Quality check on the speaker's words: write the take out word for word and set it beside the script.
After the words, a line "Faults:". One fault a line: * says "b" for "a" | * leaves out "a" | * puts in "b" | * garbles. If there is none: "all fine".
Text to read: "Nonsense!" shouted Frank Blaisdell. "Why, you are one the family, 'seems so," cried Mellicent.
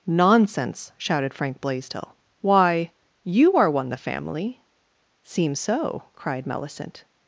"Nonsense!" shouted Frank Blaisdell. "Why, you are one the family, 'seems so," cried Mellicent.
Faults:
all fine